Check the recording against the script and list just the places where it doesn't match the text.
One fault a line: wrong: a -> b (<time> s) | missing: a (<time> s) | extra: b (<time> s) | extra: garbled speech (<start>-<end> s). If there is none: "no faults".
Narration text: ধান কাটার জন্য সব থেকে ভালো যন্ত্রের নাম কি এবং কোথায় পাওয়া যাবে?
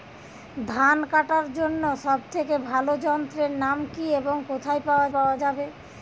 extra: পাওয়া (5.1 s)